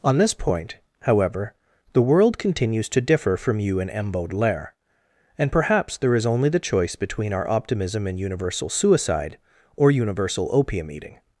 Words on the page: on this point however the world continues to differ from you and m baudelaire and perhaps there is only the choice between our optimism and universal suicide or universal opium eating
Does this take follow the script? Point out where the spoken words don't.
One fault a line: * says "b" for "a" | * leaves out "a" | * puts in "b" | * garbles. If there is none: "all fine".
all fine